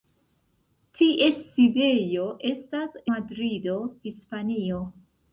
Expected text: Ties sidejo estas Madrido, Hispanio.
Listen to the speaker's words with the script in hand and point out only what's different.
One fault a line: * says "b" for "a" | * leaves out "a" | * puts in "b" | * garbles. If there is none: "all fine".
all fine